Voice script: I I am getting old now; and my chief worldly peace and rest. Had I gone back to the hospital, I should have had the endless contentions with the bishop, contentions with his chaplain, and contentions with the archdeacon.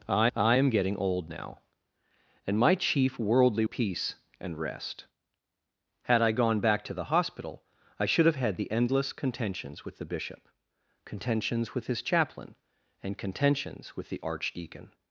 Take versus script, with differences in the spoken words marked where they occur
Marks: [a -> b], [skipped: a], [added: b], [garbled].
I I am getting old now; and my chief worldly peace and rest. Had I gone back to the hospital, I should have had the endless contentions with the bishop, contentions with his chaplain, and contentions with the archdeacon.